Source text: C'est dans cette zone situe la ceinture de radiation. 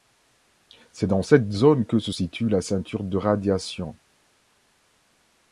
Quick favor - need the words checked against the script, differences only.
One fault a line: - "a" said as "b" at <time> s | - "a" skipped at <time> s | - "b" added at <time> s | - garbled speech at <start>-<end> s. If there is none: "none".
- "que se" added at 1.9 s